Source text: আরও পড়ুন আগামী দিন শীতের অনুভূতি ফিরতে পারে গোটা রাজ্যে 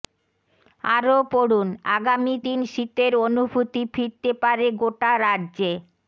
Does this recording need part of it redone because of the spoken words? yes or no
no